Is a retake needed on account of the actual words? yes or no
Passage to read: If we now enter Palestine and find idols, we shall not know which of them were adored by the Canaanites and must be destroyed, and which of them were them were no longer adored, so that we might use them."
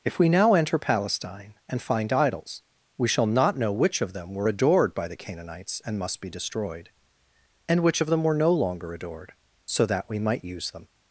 yes